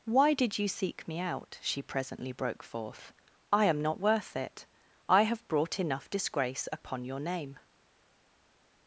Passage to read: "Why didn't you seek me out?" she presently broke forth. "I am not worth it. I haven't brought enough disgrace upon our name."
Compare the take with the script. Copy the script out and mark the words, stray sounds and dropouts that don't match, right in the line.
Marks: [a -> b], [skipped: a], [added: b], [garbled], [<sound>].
"Why [didn't -> did] you seek me out?" she presently broke forth. "I am not worth it. I [haven't -> have] brought enough disgrace upon [our -> your] name."